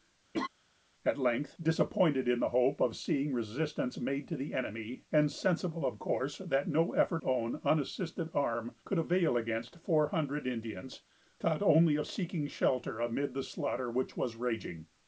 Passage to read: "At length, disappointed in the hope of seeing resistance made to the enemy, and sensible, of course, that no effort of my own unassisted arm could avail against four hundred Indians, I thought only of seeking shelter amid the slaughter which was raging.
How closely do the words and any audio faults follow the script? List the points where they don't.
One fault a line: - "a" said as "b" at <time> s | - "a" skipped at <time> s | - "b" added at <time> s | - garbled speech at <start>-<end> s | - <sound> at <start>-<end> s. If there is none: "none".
- laugh at 0.3-0.5 s
- "of my" skipped at 7.3 s
- "I" skipped at 11.0 s